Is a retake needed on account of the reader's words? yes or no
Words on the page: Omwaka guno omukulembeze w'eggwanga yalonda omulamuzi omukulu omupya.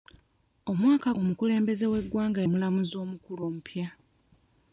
yes